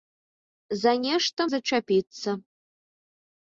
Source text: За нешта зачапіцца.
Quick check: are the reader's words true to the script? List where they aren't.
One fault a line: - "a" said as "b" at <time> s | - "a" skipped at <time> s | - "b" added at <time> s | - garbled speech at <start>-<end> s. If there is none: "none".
none